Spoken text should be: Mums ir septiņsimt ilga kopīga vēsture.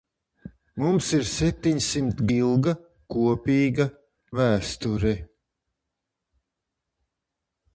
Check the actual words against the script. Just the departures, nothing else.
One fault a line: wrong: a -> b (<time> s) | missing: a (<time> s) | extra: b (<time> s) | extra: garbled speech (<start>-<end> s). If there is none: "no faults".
no faults